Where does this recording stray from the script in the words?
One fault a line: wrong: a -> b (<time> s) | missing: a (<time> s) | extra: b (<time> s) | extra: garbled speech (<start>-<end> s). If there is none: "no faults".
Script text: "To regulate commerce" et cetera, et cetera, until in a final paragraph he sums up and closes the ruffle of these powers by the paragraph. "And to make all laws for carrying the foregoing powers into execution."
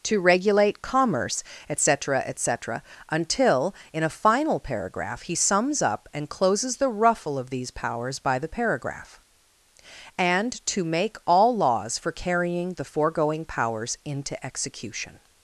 no faults